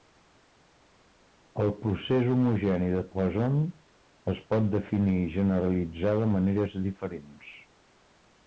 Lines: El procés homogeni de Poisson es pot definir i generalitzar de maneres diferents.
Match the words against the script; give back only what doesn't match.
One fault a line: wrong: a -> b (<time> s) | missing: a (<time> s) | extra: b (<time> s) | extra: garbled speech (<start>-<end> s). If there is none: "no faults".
no faults